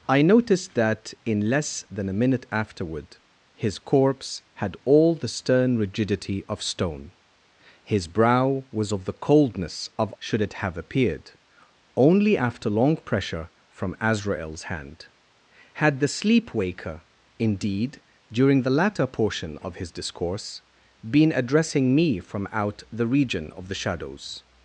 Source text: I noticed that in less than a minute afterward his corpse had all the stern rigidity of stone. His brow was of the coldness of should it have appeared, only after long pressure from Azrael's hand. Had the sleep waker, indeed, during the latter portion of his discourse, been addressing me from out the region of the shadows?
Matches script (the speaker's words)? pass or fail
pass